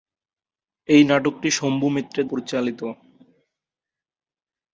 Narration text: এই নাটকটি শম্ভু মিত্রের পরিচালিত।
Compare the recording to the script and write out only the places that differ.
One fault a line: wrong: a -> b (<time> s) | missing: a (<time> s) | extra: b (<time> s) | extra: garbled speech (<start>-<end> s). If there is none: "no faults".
no faults